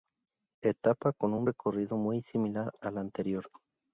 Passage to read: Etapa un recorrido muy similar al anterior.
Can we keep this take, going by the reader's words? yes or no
no